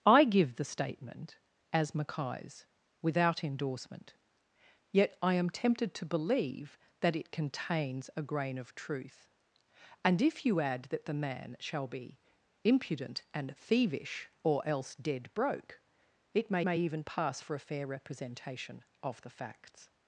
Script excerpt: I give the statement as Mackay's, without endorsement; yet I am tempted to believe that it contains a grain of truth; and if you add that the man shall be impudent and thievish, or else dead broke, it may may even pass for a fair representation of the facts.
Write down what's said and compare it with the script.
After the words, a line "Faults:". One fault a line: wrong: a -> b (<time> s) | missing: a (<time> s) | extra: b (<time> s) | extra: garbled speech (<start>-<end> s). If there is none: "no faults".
I give the statement as Mackay's, without endorsement; yet I am tempted to believe that it contains a grain of truth; and if you add that the man shall be impudent and thievish, or else dead broke, it may may even pass for a fair representation of the facts.
Faults:
no faults